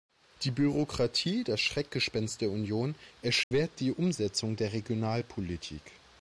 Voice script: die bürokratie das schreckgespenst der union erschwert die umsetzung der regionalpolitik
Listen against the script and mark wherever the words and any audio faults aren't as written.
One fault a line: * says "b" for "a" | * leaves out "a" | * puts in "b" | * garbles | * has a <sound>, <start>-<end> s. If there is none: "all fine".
* has a dropout, 3.4-3.5 s